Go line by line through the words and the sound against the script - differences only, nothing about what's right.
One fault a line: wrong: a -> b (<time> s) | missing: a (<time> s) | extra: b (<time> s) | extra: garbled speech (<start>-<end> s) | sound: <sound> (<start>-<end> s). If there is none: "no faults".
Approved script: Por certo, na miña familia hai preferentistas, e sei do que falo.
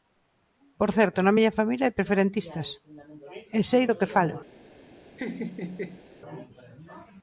sound: laugh (5.2-6.1 s)